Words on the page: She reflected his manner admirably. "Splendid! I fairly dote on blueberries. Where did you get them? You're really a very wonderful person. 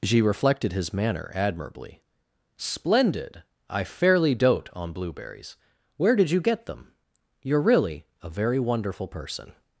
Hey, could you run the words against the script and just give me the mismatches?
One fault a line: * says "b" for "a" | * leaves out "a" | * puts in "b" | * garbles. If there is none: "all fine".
all fine